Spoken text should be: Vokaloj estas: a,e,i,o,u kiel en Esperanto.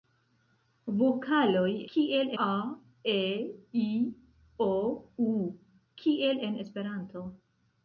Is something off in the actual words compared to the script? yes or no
yes